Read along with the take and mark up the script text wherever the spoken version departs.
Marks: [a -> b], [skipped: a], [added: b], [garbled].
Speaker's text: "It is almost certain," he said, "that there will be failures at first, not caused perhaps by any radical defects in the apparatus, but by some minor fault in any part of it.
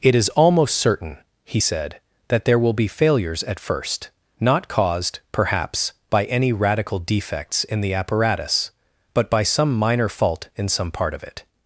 "It is almost certain," he said, "that there will be failures at first, not caused perhaps by any radical defects in the apparatus, but by some minor fault in [any -> some] part of it.